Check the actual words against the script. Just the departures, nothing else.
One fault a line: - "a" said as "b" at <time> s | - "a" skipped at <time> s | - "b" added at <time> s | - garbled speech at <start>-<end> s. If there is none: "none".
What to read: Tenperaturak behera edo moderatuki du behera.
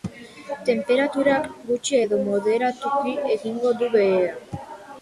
- "behera" said as "gutxi" at 1.7 s
- "egingo" added at 3.4 s